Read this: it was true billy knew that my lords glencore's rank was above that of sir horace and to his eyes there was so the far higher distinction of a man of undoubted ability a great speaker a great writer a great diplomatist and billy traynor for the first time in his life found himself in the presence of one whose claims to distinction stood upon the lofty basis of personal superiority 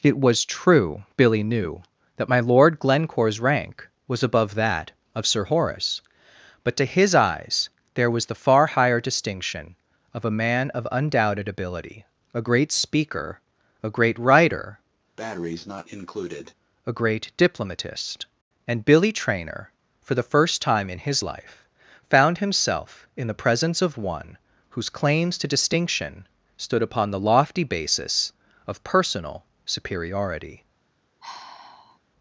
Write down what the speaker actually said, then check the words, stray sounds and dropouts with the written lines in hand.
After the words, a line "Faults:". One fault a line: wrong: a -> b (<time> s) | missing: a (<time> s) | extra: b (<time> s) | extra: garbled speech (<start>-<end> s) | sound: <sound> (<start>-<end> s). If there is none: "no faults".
it was true billy knew that my lord glencore's rank was above that of sir horace but to his eyes there was the far higher distinction of a man of undoubted ability a great speaker a great writer a great diplomatist and billy traynor for the first time in his life found himself in the presence of one whose claims to distinction stood upon the lofty basis of personal superiority
Faults:
wrong: lords -> lord (2.4 s)
wrong: and -> but (6.6 s)
missing: so (8.3 s)
sound: breath (15.2-16.5 s)
sound: sigh (31.2-32.0 s)